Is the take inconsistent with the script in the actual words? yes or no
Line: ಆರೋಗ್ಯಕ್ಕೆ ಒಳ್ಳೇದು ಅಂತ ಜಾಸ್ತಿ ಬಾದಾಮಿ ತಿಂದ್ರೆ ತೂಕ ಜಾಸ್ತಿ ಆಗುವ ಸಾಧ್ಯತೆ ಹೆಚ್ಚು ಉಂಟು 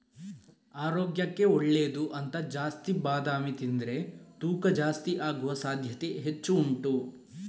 no